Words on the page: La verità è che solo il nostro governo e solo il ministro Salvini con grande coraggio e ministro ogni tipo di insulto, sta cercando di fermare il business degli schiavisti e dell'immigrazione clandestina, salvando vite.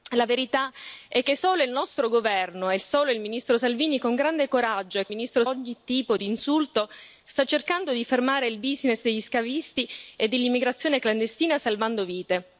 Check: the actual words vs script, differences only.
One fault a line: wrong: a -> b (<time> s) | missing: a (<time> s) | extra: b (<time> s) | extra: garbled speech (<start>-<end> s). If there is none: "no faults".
no faults